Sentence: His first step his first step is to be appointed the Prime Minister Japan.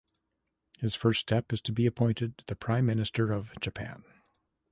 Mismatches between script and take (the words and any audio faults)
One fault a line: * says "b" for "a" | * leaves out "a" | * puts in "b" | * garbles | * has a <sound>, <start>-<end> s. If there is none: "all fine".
* leaves out "his first step"
* puts in "of"